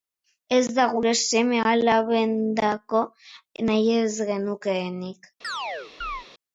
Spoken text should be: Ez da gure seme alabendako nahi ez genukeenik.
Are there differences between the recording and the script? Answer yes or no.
no